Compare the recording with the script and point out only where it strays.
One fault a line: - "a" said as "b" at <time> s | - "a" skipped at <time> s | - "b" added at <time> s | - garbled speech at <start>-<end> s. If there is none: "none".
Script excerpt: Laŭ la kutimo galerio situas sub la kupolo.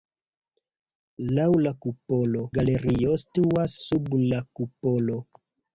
- "kutimo" said as "kupolo" at 1.9 s